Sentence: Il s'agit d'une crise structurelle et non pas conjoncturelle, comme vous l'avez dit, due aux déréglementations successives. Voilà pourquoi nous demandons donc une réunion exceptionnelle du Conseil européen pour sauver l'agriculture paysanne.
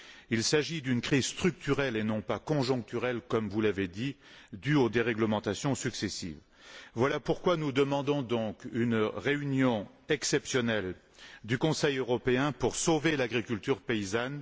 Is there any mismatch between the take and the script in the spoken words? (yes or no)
no